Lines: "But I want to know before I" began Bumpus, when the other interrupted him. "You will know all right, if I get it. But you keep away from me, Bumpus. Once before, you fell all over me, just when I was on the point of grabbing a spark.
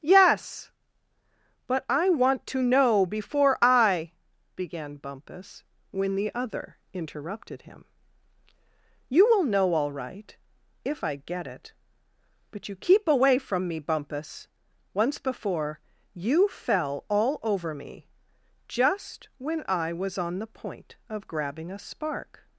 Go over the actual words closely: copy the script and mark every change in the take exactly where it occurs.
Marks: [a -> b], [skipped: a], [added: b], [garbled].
[added: yes] "But I want to know before I" began Bumpus, when the other interrupted him. "You will know all right, if I get it. But you keep away from me, Bumpus. Once before, you fell all over me, just when I was on the point of grabbing a spark.